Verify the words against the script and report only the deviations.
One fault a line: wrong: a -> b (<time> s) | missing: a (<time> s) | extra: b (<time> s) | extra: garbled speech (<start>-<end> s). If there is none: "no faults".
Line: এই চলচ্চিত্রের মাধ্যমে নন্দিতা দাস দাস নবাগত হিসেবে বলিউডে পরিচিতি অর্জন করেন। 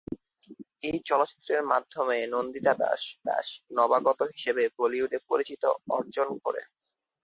no faults